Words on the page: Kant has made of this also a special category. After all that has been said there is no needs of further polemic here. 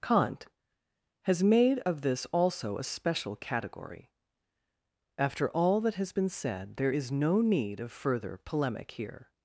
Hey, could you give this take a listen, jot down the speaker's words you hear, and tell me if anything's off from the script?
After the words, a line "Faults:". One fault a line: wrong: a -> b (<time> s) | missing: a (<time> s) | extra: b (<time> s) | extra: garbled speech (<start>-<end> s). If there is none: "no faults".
Kant has made of this also a special category. After all that has been said there is no need of further polemic here.
Faults:
wrong: needs -> need (7.4 s)